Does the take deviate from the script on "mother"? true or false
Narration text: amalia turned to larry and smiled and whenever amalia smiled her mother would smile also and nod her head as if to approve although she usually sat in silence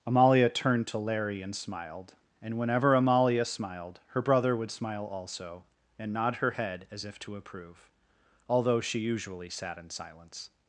true